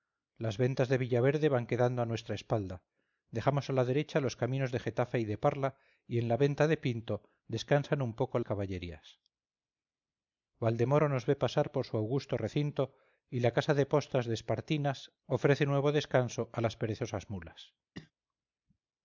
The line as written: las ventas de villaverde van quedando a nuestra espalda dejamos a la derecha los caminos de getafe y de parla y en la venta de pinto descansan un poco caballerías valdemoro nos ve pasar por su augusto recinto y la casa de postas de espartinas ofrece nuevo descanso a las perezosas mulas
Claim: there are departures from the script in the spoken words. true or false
false